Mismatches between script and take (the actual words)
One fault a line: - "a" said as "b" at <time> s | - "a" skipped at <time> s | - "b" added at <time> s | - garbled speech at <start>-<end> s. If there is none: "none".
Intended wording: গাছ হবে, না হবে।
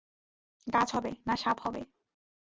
- "সাপ" added at 1.4 s